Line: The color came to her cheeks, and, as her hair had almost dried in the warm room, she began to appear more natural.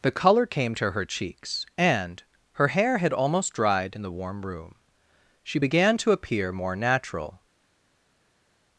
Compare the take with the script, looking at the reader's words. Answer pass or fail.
fail